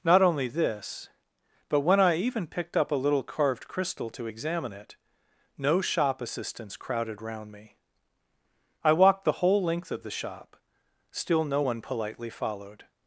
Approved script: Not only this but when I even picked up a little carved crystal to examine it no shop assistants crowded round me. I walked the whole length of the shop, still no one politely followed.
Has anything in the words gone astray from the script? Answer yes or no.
no